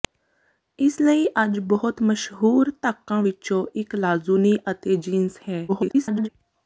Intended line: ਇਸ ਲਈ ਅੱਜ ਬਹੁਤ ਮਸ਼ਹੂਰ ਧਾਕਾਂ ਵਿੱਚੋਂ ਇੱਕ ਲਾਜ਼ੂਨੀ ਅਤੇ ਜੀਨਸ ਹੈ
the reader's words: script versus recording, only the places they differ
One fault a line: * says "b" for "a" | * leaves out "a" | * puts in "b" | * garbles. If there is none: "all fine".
* garbles